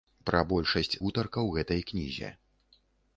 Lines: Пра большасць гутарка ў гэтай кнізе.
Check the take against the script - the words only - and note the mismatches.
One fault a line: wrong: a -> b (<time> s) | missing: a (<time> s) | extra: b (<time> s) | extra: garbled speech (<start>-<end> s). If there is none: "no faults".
no faults